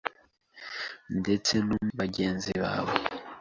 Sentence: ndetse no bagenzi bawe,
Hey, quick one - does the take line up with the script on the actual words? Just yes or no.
yes